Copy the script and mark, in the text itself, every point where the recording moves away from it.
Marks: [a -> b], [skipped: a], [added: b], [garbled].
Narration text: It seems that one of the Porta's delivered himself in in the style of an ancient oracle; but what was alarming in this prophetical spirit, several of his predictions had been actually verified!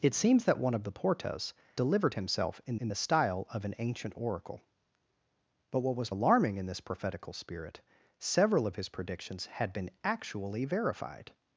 It seems that one of the Porta's delivered himself in in the style of an ancient oracle; but what was alarming in this prophetical spirit, several of his predictions had been actually verified!